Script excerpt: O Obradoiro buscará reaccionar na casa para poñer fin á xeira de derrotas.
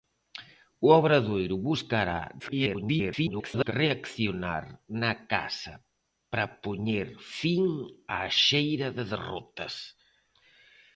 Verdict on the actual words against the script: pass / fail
fail